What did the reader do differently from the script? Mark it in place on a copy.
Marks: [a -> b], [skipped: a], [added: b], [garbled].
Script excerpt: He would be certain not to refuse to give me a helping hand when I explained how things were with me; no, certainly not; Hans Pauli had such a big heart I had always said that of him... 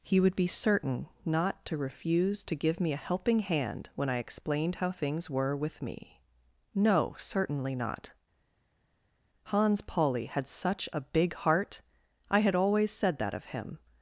He would be certain not to refuse to give me a helping hand when I explained how things were with me; no, certainly not; Hans Pauli had such a big heart I had always said that of him...